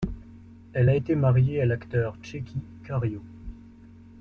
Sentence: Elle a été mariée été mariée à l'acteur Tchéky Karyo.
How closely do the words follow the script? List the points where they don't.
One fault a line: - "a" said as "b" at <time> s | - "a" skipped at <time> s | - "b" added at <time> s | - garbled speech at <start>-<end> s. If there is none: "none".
- "été mariée" skipped at 1.6 s